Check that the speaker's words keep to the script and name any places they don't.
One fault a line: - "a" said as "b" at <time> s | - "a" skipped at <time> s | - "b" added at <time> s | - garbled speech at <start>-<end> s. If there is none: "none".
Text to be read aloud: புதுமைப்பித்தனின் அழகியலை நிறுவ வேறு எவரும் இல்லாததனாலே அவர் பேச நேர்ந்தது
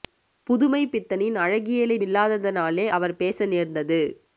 - "நிறுவ வேறு எவரும்" skipped at 2.0 s